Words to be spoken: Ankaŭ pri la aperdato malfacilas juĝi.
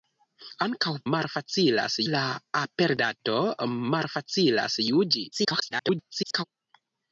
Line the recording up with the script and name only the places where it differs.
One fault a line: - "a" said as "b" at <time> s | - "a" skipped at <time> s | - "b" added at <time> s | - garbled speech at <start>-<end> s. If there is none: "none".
- "pri" said as "malfacilas" at 1.1 s
- garbled speech at 5.3-6.4 s